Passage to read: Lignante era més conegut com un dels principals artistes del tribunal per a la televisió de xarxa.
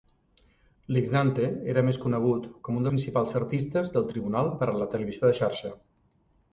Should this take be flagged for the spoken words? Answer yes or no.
yes